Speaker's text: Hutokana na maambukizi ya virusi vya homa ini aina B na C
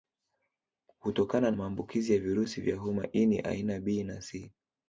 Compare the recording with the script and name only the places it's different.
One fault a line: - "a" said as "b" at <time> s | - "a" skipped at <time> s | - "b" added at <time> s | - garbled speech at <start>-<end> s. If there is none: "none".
- "na" skipped at 1.5 s